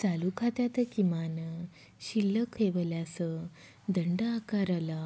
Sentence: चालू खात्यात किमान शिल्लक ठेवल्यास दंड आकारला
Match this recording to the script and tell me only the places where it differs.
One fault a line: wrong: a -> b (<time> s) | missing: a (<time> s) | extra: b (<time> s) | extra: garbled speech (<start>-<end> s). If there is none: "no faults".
no faults